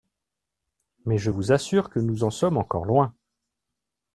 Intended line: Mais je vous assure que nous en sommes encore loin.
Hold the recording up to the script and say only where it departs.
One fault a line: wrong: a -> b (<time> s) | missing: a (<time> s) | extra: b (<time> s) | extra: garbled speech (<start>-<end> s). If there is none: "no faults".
no faults